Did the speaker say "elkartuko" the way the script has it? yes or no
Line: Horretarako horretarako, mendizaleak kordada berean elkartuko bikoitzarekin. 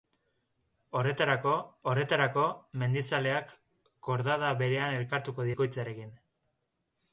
yes